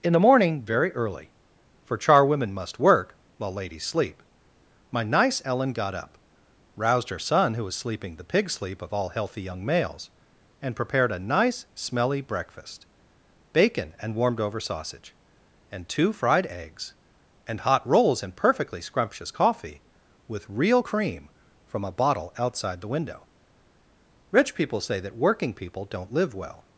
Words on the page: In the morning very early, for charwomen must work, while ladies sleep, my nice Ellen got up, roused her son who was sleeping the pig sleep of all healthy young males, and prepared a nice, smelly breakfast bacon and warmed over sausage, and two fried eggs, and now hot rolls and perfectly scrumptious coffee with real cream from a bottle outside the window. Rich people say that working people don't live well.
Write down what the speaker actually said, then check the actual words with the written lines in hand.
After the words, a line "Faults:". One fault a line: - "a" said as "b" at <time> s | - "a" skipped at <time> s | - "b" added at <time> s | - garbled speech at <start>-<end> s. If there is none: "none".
In the morning very early, for charwomen must work, while ladies sleep, my nice Ellen got up, roused her son who was sleeping the pig sleep of all healthy young males, and prepared a nice, smelly breakfast bacon and warmed over sausage, and two fried eggs, and hot rolls and perfectly scrumptious coffee with real cream from a bottle outside the window. Rich people say that working people don't live well.
Faults:
- "now" skipped at 17.6 s